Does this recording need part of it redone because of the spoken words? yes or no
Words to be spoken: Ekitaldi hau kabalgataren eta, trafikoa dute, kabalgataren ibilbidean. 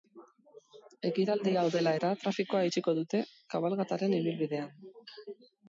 yes